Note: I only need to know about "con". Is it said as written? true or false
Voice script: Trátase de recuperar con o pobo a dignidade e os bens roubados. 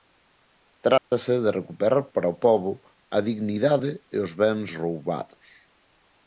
false